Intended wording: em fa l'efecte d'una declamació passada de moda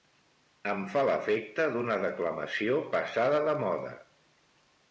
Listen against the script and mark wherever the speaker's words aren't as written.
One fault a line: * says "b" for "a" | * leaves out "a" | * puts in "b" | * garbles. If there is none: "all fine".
all fine